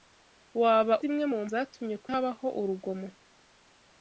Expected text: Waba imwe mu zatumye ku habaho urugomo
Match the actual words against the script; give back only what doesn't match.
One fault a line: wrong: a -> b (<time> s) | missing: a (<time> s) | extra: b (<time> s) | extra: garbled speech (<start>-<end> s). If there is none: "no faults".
no faults